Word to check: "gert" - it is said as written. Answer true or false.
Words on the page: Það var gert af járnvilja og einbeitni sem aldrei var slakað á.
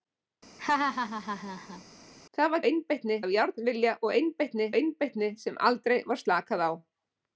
false